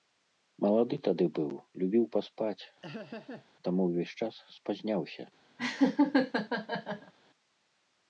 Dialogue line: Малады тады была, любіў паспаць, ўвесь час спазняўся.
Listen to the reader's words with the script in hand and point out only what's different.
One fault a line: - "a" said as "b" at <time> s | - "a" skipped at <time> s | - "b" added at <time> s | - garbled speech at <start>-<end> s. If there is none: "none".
- "была" said as "быў" at 1.4 s
- "таму" added at 3.7 s